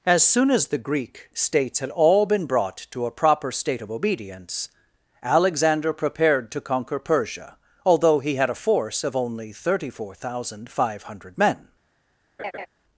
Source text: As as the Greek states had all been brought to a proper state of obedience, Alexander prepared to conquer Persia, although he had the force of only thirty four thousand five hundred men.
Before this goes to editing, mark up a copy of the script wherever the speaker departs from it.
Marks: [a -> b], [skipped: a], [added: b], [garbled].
As [added: soon] as the Greek states had all been brought to a proper state of obedience, Alexander prepared to conquer Persia, although he had [the -> a] force of only thirty four thousand five hundred men.